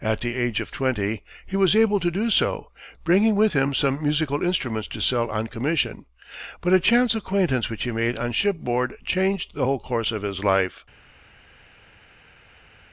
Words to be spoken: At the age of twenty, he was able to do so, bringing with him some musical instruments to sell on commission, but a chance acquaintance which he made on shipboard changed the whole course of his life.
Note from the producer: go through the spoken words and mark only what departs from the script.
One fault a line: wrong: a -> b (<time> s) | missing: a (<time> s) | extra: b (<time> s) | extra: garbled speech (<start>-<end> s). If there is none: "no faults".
no faults